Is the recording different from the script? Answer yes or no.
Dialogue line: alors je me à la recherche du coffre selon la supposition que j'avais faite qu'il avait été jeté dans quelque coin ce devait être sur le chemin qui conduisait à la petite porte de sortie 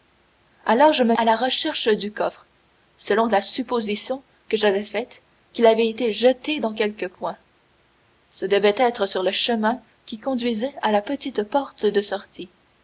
no